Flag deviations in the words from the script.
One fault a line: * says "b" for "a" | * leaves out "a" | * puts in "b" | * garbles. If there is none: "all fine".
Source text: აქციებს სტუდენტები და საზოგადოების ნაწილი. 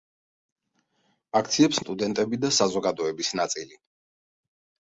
all fine